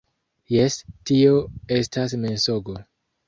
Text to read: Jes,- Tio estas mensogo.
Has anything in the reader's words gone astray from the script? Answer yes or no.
no